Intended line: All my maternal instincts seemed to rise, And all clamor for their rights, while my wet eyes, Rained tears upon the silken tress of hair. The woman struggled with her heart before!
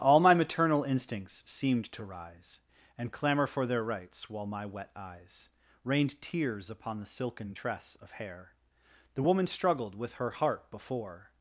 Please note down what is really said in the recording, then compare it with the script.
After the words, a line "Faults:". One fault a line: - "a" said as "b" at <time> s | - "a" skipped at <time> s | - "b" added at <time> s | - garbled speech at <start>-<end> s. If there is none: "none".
All my maternal instincts seemed to rise, And clamor for their rights, while my wet eyes, Rained tears upon the silken tress of hair. The woman struggled with her heart before!
Faults:
- "all" skipped at 3.1 s